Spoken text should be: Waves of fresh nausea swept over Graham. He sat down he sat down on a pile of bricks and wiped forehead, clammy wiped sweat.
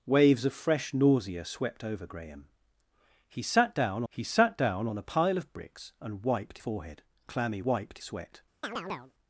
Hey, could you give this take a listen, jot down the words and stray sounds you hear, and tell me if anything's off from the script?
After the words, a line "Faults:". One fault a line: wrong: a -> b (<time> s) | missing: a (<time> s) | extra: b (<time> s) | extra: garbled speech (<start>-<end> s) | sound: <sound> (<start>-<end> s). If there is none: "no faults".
Waves of fresh nausea swept over Graham. He sat down he sat down on a pile of bricks and wiped forehead, clammy wiped sweat.
Faults:
sound: chirp (8.6-9.1 s)